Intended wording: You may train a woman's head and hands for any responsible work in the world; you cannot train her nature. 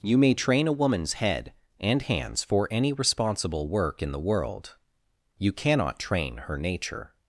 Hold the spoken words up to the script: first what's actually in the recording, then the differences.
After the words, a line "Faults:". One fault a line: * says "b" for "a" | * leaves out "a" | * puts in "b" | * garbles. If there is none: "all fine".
You may train a woman's head and hands for any responsible work in the world; you cannot train her nature.
Faults:
all fine